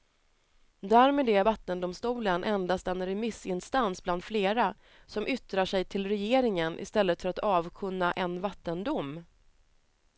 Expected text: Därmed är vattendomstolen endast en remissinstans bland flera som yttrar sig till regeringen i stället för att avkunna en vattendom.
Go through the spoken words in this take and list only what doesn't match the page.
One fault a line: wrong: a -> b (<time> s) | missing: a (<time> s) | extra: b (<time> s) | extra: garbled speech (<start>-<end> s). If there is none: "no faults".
no faults